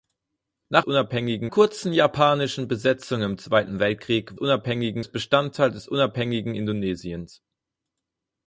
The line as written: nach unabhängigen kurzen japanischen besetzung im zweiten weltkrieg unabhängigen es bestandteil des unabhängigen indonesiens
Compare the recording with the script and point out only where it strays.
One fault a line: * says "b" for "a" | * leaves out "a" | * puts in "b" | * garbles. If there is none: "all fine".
all fine